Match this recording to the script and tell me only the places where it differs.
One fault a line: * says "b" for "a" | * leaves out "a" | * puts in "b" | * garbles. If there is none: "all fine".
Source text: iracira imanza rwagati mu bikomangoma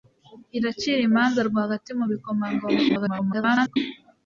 * garbles